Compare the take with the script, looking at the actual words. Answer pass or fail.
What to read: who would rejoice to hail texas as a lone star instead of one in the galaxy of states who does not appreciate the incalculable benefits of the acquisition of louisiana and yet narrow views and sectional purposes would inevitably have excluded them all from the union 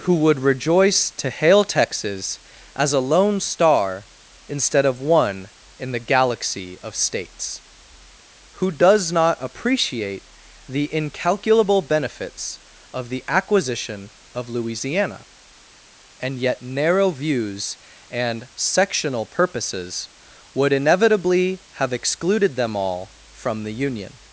pass